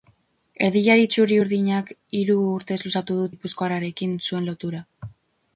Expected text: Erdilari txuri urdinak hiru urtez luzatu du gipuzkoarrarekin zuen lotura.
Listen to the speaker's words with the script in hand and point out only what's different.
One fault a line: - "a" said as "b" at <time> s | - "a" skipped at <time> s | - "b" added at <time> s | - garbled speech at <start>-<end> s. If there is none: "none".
none